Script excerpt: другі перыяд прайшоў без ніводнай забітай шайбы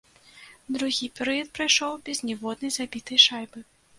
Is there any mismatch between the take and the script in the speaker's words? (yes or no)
no